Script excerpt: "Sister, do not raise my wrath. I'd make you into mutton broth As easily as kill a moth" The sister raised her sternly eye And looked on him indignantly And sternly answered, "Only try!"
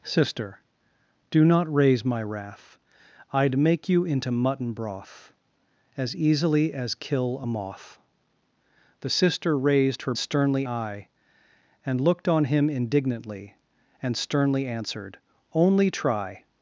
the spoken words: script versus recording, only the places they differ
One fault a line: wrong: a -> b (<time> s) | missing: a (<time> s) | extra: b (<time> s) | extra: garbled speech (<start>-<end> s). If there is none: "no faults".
no faults